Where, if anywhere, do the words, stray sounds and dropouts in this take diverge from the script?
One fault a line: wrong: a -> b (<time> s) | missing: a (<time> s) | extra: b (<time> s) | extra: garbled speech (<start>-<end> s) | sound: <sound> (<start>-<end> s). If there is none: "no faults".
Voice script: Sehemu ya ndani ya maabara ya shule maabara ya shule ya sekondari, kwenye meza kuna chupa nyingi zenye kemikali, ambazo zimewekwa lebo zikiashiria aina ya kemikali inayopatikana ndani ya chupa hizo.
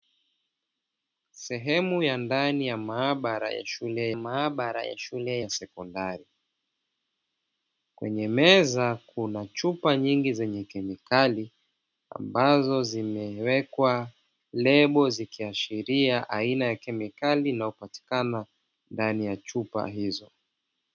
no faults